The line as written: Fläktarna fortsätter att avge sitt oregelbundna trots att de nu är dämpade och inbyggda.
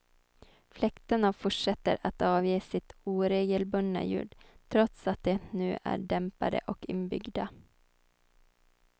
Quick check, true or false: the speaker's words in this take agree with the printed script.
false